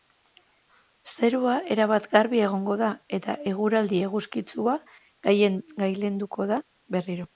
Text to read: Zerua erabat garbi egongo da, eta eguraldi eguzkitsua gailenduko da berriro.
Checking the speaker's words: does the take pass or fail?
pass